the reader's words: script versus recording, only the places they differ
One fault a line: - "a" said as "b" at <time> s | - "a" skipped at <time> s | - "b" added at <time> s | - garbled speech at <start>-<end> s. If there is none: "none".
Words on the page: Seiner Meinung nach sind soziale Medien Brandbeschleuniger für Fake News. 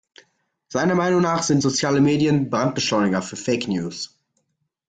none